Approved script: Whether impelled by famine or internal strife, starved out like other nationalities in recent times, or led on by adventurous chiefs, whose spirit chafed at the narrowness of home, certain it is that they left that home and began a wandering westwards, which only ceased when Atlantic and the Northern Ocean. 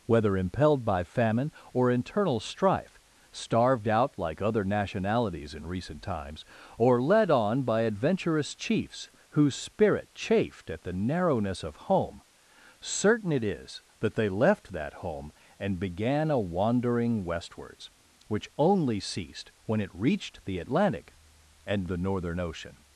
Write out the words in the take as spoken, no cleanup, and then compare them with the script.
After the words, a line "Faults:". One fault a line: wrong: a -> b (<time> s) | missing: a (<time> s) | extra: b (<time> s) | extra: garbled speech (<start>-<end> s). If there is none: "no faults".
Whether impelled by famine or internal strife, starved out like other nationalities in recent times, or led on by adventurous chiefs, whose spirit chafed at the narrowness of home, certain it is that they left that home and began a wandering westwards, which only ceased when it reached the Atlantic and the Northern Ocean.
Faults:
extra: it reached the (19.8 s)